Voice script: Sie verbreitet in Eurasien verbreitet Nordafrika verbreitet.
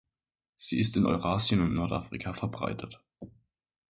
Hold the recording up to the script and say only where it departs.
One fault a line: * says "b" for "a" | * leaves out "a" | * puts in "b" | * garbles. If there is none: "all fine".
* says "ist" for "verbreitet"
* says "und" for "verbreitet"